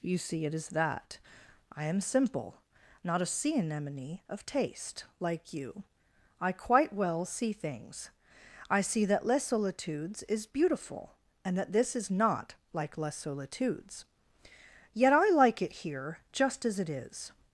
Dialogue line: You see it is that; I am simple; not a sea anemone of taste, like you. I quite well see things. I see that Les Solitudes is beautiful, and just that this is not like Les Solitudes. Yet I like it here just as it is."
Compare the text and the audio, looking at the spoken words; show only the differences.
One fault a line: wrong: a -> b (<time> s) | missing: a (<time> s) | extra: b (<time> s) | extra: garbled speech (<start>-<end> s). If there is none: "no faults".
missing: just (11.6 s)